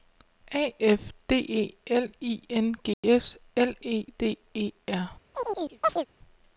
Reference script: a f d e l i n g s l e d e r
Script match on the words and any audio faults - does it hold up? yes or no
no